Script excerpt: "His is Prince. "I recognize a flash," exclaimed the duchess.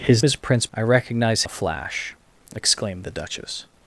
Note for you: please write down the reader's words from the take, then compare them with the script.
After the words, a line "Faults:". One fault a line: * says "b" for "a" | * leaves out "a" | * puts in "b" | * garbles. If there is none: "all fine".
"His is Prince. "I recognize a flash," exclaimed the duchess.
Faults:
all fine